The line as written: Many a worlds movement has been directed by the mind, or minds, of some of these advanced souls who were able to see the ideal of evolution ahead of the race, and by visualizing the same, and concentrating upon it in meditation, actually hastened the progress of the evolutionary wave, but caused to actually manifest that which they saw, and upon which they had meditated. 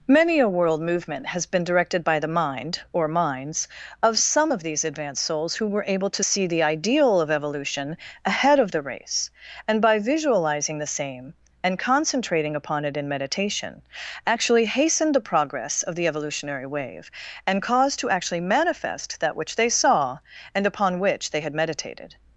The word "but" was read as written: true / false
false